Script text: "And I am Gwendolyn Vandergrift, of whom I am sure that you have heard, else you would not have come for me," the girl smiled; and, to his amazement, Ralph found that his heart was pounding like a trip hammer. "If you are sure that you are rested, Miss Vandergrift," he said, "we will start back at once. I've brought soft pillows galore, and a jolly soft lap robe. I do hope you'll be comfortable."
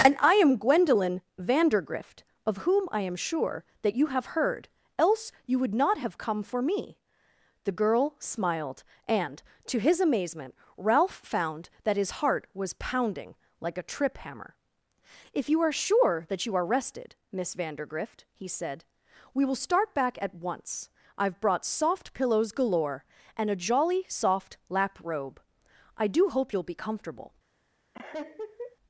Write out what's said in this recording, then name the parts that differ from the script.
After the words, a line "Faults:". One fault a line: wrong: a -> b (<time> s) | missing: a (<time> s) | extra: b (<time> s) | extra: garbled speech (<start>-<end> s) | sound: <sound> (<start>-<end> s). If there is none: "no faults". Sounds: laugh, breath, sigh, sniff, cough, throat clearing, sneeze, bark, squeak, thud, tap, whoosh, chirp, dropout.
"And I am Gwendolyn Vandergrift, of whom I am sure that you have heard, else you would not have come for me," the girl smiled; and, to his amazement, Ralph found that his heart was pounding like a trip hammer. "If you are sure that you are rested, Miss Vandergrift," he said, "we will start back at once. I've brought soft pillows galore, and a jolly soft lap robe. I do hope you'll be comfortable."
Faults:
sound: laugh (27.9-28.8 s)